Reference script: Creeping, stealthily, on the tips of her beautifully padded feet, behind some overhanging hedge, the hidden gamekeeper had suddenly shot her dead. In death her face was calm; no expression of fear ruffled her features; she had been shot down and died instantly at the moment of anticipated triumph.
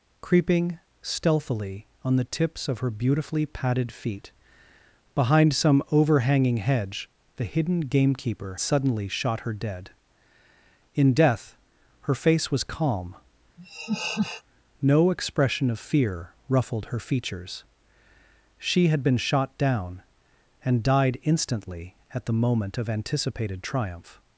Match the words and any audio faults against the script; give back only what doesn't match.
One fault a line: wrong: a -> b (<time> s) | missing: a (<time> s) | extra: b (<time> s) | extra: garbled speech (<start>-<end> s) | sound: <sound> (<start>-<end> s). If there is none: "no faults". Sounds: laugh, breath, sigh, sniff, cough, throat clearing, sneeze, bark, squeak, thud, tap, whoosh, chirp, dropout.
missing: had (8.6 s)
sound: laugh (13.6-14.4 s)